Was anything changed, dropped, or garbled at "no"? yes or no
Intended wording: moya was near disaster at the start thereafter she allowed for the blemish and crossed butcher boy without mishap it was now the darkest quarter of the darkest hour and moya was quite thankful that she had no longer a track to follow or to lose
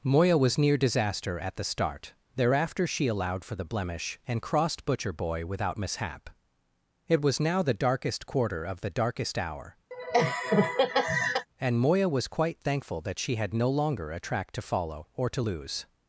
no